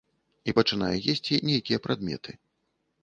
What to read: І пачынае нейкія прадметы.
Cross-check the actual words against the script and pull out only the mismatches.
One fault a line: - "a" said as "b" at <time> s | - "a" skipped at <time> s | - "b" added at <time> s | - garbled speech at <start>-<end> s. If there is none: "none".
- "есці" added at 1.1 s